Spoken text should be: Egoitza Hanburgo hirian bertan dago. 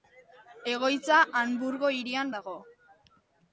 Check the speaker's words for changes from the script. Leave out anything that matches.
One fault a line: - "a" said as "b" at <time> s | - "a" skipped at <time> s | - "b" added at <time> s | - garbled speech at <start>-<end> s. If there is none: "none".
- "bertan" skipped at 2.3 s